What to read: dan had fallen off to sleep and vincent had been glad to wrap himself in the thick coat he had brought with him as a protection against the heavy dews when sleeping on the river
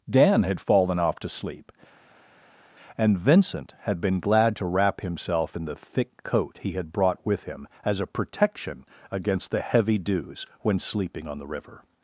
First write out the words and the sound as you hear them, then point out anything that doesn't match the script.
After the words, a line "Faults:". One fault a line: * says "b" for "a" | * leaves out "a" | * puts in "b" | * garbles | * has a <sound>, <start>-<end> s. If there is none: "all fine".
dan had fallen off to sleep and vincent had been glad to wrap himself in the thick coat he had brought with him as a protection against the heavy dews when sleeping on the river
Faults:
all fine